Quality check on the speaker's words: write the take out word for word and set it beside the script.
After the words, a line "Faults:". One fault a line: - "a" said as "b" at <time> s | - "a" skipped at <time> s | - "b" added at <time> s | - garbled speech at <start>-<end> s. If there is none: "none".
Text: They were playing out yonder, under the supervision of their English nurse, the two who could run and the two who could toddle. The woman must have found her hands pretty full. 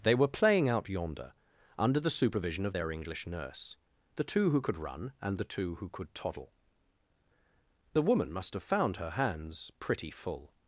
They were playing out yonder, under the supervision of their English nurse, the two who could run and the two who could toddle. The woman must have found her hands pretty full.
Faults:
none